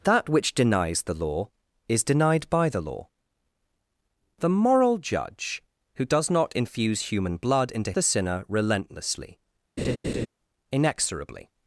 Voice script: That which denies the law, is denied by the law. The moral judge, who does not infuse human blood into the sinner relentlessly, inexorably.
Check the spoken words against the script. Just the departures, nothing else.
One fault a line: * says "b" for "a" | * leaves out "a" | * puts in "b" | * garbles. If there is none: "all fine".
all fine